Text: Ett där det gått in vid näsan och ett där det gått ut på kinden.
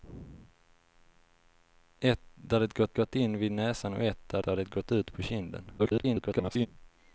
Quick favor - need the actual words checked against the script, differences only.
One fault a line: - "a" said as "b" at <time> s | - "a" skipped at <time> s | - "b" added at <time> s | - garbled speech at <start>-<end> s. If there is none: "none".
- "gått" added at 2.9 s
- "där" added at 4.4 s
- garbled speech at 5.8-6.7 s